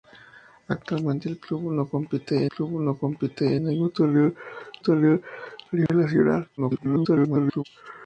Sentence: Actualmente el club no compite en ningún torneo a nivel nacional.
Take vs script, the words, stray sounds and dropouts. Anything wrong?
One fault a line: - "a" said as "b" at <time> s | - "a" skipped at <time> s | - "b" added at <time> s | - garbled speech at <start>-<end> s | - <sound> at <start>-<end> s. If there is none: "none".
- "club no compite" added at 2.5 s
- "torneo" added at 4.8 s
- dropout at 5.9-5.9 s
- garbled speech at 6.6-7.6 s